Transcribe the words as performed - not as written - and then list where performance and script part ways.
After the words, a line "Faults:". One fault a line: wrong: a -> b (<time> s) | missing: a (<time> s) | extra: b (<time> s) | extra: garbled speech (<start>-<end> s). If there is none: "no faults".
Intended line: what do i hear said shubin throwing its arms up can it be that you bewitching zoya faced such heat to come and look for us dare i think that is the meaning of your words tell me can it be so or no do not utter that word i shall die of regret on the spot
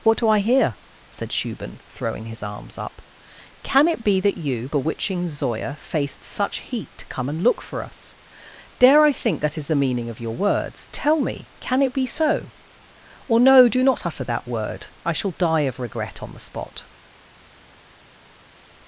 what do i hear said shubin throwing his arms up can it be that you bewitching zoya faced such heat to come and look for us dare i think that is the meaning of your words tell me can it be so or no do not utter that word i shall die of regret on the spot
Faults:
wrong: its -> his (2.2 s)